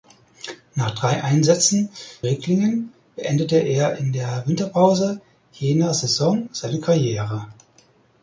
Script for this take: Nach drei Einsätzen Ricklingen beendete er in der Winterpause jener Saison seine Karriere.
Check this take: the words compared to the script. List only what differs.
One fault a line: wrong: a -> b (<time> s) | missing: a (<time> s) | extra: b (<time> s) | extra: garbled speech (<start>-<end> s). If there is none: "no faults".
no faults